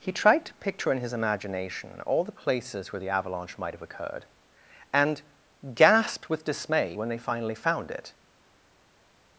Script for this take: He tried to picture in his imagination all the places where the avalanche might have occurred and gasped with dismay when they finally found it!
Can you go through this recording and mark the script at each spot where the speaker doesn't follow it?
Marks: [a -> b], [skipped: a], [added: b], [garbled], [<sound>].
He tried to picture in his imagination all the places where the avalanche might have occurred and gasped with dismay when they finally found it!